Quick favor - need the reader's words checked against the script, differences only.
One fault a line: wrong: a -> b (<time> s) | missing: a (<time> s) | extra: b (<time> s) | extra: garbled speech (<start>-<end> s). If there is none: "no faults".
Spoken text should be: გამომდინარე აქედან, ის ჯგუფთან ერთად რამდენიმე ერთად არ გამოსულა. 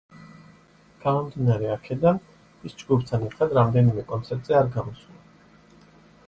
wrong: ერთად -> კონცერტზე (4.1 s)